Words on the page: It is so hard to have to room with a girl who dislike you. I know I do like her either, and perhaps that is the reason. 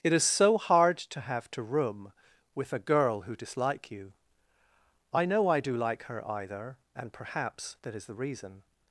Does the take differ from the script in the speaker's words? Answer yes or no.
no